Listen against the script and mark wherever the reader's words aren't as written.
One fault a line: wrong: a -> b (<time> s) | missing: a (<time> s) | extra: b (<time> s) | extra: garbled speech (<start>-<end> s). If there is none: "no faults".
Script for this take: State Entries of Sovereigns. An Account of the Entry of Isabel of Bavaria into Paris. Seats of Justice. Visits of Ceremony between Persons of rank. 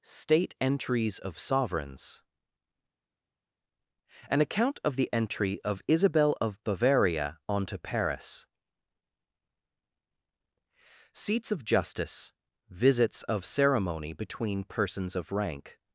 wrong: into -> onto (7.5 s)